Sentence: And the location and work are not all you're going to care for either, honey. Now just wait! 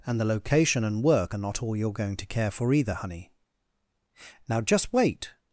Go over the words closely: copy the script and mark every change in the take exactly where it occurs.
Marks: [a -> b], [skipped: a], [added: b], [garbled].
And the location and work are not all you're going to care for either, honey. Now just wait!